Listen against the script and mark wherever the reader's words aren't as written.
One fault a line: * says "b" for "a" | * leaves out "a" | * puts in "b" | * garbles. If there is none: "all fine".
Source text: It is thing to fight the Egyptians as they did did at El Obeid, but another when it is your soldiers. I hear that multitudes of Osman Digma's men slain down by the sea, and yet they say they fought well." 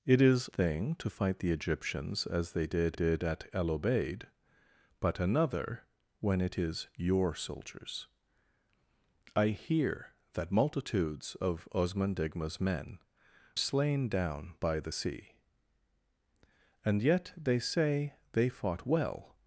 all fine